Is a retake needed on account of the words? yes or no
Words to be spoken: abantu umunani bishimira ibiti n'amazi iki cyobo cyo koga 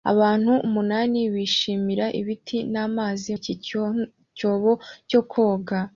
no